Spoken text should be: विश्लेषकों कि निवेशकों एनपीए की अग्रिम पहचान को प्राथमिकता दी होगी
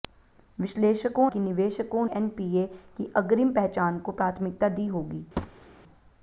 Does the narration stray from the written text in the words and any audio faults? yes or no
yes